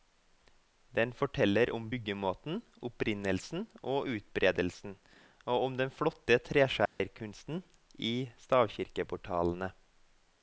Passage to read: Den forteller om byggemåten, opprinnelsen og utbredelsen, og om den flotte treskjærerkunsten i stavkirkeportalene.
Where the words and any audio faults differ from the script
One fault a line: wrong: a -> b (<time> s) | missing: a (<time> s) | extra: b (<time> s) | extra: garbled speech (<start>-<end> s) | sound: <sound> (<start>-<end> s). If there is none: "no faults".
sound: dropout (6.9-7.0 s)